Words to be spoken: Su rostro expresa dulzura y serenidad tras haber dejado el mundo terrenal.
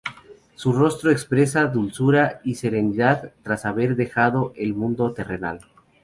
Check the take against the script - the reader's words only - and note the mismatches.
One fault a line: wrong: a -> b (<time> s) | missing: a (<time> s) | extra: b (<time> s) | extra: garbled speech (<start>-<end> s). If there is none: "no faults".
no faults